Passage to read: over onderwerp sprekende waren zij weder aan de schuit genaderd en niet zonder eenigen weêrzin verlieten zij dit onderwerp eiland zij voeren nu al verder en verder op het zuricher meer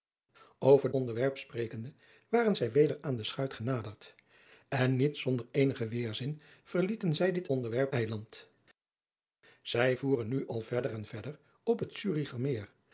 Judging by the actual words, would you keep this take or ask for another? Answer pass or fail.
pass